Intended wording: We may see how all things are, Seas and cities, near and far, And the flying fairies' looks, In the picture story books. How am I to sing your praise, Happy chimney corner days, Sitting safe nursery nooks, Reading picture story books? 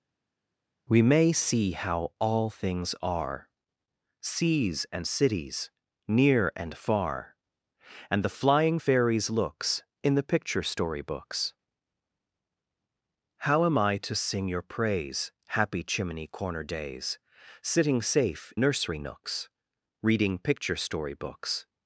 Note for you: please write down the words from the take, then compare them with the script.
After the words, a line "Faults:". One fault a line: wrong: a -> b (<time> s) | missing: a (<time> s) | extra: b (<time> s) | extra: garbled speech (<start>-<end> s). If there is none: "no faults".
We may see how all things are, Seas and cities, near and far, And the flying fairies' looks, In the picture story books. How am I to sing your praise, Happy chimney corner days, Sitting safe nursery nooks, Reading picture story books?
Faults:
no faults